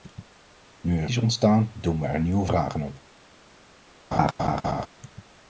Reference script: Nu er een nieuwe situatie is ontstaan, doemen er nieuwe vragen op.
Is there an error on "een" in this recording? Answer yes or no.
yes